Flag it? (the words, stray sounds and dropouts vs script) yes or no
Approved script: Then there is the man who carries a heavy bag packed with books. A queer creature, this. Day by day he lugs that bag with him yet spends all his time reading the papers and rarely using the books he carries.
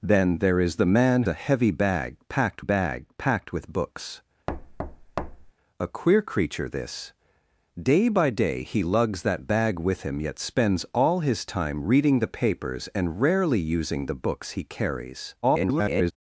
yes